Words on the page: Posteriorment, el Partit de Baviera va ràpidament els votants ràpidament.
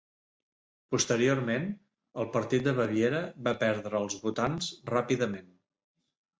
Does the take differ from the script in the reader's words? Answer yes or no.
yes